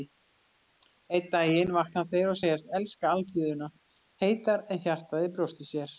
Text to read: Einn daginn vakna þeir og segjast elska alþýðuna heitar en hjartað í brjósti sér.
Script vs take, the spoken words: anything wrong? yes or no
no